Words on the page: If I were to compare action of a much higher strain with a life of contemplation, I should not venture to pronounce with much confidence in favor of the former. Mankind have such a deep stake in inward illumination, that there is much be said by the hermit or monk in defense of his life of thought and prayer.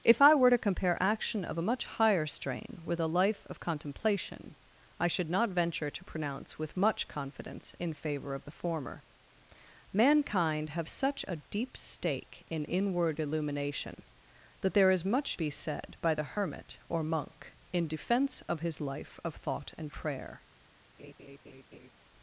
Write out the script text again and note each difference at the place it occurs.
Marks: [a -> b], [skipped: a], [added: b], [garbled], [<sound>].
If I were to compare action of a much higher strain with a life of contemplation, I should not venture to pronounce with much confidence in favor of the former. Mankind have such a deep stake in inward illumination, that there is much be said by the hermit or monk in defense of his life of thought and prayer. [laugh]